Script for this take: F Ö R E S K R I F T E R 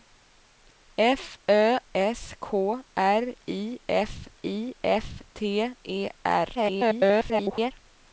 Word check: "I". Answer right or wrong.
right